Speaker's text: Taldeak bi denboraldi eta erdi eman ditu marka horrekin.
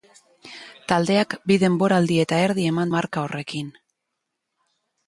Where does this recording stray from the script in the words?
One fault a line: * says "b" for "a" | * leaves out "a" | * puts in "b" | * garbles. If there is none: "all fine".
* leaves out "ditu"